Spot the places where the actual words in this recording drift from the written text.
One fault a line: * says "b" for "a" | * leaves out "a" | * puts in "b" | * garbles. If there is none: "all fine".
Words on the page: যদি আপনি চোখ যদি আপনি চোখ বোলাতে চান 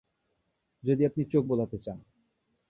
* leaves out "যদি আপনি চোখ"